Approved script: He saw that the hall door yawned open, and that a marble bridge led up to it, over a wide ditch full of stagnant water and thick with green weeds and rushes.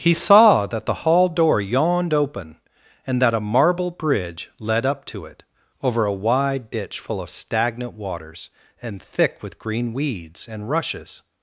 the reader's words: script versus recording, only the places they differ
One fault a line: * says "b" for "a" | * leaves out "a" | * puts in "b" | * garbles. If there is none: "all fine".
* says "waters" for "water"